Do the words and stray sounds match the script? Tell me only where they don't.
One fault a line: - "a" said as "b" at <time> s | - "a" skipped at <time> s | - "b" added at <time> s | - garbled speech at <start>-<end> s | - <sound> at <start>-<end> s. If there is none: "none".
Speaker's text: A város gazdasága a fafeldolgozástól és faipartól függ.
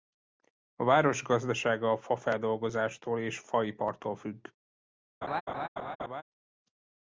- laugh at 5.2-6.2 s